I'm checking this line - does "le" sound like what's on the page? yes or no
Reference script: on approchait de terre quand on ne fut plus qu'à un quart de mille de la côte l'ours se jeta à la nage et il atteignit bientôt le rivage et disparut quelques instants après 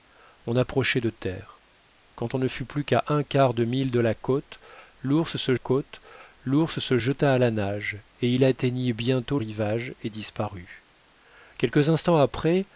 no